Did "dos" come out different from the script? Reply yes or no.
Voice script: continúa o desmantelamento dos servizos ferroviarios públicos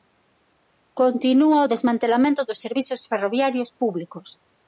no